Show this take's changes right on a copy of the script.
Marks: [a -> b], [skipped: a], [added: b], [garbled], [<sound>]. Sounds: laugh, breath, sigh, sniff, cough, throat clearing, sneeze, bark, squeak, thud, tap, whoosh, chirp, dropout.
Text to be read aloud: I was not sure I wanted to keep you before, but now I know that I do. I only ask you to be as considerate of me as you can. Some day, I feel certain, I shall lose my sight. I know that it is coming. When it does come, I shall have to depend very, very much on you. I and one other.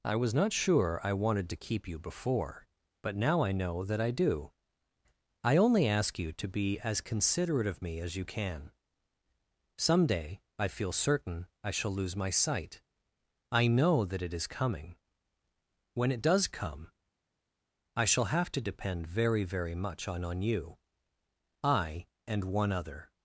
I was not sure I wanted to keep you before, but now I know that I do. I only ask you to be as considerate of me as you can. Some day, I feel certain, I shall lose my sight. I know that it is coming. When it does come, I shall have to depend very, very much on [added: on] you. I and one other.